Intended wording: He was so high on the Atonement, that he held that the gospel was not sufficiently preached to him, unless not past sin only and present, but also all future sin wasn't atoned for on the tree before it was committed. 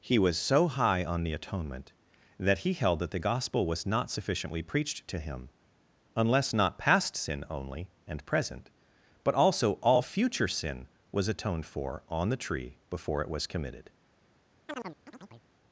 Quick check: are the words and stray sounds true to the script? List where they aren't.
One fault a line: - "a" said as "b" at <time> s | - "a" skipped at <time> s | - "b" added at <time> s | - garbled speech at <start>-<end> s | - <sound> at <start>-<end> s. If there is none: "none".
- "wasn't" said as "was" at 11.1 s
- chirp at 14.7-15.5 s